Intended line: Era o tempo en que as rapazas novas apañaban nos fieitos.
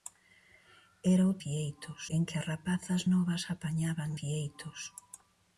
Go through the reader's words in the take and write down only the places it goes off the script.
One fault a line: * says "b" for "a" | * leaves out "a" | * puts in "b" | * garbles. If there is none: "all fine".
* says "fieitos" for "tempo"
* leaves out "nos"